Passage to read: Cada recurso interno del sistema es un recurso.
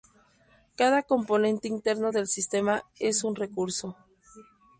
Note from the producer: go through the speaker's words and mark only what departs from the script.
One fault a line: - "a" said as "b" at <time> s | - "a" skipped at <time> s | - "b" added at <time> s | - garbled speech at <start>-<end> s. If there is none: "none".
- "recurso" said as "componente" at 1.0 s